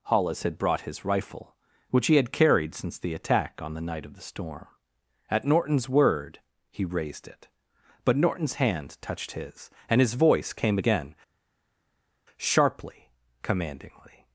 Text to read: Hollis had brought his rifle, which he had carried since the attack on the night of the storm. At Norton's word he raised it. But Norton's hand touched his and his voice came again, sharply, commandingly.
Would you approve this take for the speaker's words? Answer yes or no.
yes